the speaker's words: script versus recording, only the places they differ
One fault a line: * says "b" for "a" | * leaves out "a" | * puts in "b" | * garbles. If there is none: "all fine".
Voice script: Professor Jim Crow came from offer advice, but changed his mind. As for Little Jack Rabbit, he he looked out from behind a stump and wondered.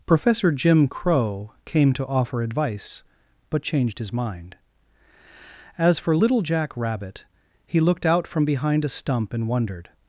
* says "to" for "from"
* leaves out "he"